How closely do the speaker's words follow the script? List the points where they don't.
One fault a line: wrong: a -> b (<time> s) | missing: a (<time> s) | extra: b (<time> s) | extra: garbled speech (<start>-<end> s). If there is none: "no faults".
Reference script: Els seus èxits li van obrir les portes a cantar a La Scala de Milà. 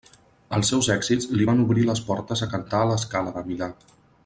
no faults